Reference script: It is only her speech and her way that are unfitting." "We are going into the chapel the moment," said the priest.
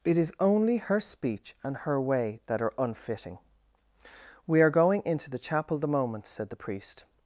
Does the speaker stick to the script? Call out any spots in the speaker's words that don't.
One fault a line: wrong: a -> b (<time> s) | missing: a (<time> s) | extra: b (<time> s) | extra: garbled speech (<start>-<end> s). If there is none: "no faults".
no faults